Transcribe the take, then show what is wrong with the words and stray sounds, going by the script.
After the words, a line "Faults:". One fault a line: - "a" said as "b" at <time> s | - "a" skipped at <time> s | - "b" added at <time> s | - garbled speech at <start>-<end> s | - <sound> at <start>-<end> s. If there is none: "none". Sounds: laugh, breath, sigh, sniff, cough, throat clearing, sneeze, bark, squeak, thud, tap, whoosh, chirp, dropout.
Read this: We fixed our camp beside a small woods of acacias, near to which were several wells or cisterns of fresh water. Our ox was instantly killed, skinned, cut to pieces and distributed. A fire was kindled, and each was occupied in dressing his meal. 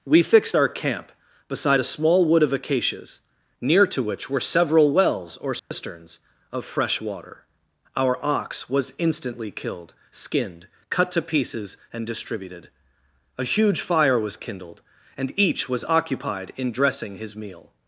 We fixed our camp beside a small wood of acacias, near to which were several wells or cisterns of fresh water. Our ox was instantly killed, skinned, cut to pieces and distributed. A huge fire was kindled, and each was occupied in dressing his meal.
Faults:
- "woods" said as "wood" at 2.3 s
- dropout at 5.6-5.7 s
- "huge" added at 13.4 s